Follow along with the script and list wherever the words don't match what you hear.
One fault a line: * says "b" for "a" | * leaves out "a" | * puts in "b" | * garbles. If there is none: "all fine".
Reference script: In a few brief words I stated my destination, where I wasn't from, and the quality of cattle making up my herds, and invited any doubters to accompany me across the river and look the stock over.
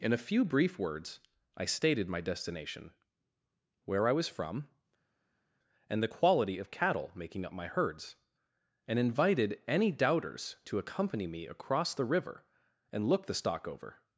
* says "was" for "wasn't"